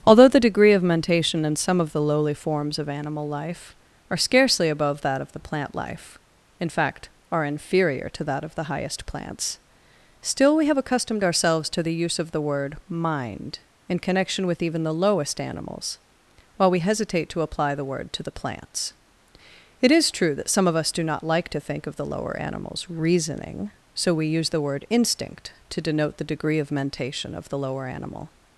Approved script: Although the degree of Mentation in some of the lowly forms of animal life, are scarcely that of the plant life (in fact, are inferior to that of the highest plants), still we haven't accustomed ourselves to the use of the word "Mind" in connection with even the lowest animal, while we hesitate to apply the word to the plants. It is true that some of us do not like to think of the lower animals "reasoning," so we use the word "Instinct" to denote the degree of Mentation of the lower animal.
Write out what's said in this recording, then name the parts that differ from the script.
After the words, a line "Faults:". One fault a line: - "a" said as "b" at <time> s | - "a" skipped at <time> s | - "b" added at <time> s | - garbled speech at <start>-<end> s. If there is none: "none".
Although the degree of Mentation in some of the lowly forms of animal life, are scarcely above that of the plant life (in fact, are inferior to that of the highest plants), still we have accustomed ourselves to the use of the word "Mind" in connection with even the lowest animals, while we hesitate to apply the word to the plants. It is true that some of us do not like to think of the lower animals "reasoning," so we use the word "Instinct" to denote the degree of Mentation of the lower animal.
Faults:
- "above" added at 4.7 s
- "haven't" said as "have" at 10.7 s
- "animal" said as "animals" at 15.4 s